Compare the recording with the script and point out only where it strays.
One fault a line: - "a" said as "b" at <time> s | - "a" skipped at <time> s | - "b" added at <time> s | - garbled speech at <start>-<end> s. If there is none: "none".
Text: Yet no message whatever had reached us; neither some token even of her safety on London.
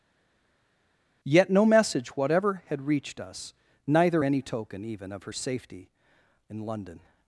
- "some" said as "any" at 4.2 s
- "on" said as "in" at 6.5 s